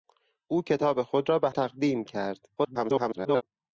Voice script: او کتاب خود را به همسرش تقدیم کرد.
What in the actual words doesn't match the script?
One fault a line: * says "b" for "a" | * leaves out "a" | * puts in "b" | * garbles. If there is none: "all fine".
* leaves out "همسرش"
* garbles